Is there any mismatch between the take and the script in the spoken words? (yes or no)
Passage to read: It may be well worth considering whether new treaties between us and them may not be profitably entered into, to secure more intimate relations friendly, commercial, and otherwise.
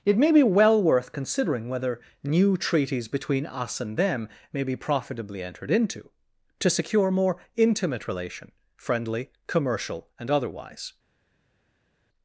yes